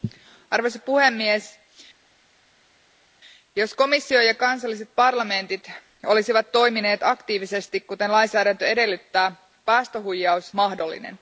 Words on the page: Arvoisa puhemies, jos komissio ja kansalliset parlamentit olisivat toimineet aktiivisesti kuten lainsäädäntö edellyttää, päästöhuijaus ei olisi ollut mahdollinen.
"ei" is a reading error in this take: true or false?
true